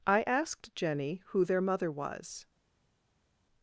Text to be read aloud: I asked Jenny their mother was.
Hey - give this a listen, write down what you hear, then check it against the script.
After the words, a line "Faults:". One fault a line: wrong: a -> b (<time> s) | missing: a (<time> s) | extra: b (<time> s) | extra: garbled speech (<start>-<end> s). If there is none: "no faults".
I asked Jenny who their mother was.
Faults:
extra: who (1.3 s)